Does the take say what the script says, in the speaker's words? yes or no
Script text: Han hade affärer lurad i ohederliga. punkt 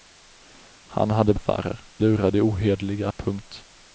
yes